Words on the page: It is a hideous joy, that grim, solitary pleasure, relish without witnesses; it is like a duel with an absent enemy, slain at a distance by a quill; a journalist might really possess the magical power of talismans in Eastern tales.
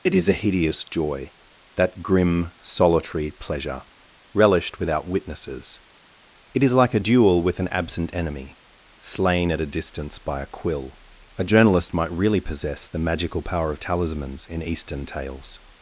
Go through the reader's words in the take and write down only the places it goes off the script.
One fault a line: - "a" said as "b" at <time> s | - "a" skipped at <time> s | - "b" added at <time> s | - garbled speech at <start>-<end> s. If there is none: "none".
- "relish" said as "relished" at 4.3 s